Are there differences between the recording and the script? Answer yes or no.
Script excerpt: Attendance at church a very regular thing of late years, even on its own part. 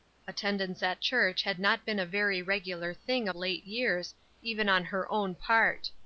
yes